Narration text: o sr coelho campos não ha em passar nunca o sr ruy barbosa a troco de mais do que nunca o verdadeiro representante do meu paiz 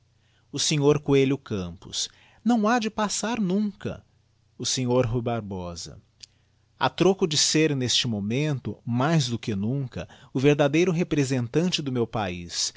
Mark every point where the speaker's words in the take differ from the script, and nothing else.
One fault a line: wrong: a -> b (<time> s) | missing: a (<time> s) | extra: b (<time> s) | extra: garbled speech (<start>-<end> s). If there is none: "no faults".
wrong: em -> de (2.8 s)
extra: ser neste momento (7.4 s)